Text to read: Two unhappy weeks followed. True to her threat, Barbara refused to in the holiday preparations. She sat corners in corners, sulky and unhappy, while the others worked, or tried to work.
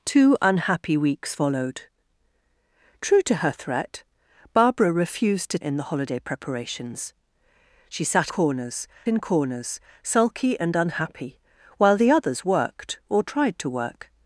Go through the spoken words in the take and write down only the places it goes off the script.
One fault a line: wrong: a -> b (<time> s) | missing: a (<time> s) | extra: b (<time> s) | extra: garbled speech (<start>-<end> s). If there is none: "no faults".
no faults